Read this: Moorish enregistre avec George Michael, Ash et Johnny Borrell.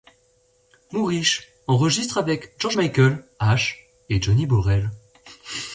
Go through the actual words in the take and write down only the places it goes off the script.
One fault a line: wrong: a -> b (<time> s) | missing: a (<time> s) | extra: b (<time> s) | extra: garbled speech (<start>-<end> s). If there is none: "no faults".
no faults